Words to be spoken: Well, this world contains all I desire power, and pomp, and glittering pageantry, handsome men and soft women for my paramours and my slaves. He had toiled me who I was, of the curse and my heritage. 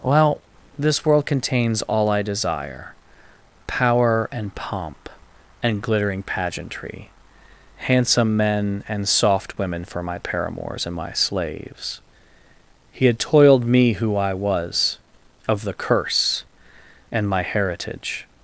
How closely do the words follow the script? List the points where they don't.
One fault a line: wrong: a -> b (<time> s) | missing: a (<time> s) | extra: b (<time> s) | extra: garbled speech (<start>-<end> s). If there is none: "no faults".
no faults